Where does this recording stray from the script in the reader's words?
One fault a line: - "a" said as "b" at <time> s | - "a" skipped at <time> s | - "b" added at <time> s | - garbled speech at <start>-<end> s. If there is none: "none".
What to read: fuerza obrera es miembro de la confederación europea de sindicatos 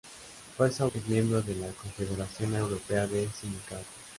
- "obrera" skipped at 0.9 s